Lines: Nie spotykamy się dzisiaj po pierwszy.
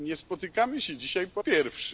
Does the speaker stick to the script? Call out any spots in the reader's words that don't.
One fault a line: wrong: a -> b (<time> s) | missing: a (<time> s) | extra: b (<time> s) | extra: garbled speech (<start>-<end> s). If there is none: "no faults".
no faults